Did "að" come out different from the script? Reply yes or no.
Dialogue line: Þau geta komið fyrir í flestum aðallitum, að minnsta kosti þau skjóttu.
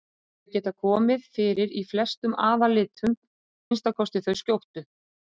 yes